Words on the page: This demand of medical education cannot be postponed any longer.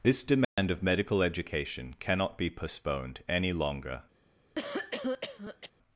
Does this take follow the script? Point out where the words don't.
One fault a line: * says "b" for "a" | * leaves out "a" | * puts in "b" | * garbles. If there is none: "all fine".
all fine